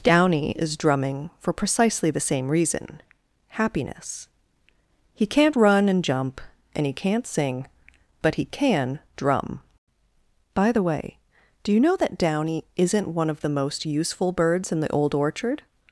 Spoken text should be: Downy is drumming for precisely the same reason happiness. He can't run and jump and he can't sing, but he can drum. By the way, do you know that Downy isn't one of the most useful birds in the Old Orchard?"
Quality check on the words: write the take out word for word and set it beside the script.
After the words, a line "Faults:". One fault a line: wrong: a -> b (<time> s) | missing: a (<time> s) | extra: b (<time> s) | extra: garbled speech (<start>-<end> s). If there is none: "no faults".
Downy is drumming for precisely the same reason happiness. He can't run and jump and he can't sing, but he can drum. By the way, do you know that Downy isn't one of the most useful birds in the Old Orchard?"
Faults:
no faults